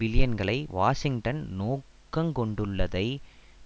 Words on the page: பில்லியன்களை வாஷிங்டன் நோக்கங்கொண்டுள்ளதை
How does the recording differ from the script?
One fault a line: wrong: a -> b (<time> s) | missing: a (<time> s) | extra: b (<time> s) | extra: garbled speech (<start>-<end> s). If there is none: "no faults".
no faults